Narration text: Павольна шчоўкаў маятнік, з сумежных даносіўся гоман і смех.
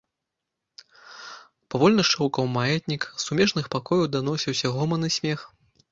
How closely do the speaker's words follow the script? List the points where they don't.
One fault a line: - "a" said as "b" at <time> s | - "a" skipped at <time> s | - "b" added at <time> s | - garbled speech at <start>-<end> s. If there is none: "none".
- "пакояў" added at 3.8 s